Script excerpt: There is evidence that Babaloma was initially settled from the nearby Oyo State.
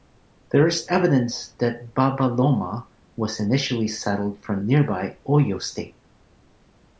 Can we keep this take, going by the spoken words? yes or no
no